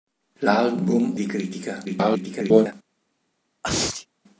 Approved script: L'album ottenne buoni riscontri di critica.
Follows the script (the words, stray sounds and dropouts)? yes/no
no